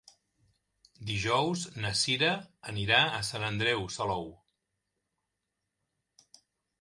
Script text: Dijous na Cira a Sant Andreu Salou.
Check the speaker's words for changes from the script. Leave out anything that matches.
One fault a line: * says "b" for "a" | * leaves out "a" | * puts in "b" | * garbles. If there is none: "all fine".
* puts in "anirà"